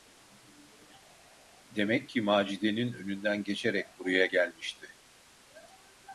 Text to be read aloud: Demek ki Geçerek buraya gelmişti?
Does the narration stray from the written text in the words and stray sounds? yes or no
yes